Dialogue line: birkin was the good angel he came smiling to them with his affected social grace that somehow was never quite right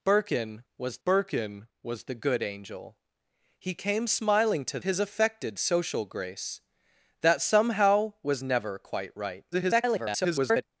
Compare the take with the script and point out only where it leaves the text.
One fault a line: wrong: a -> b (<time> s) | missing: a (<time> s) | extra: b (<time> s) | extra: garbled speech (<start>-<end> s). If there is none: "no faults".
extra: birkin was (1.0 s)
missing: them with (4.8 s)
extra: garbled speech (9.5-10.6 s)